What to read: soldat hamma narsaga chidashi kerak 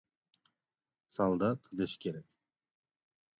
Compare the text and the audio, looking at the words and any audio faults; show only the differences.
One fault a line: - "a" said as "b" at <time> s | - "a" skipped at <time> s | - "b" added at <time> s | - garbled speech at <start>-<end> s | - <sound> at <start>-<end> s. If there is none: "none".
- "hamma narsaga" skipped at 1.7 s